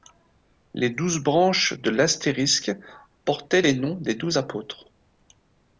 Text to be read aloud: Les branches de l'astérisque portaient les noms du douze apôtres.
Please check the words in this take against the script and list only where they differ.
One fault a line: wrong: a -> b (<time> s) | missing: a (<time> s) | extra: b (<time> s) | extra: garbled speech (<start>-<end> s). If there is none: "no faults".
extra: douze (0.9 s)
wrong: du -> des (3.9 s)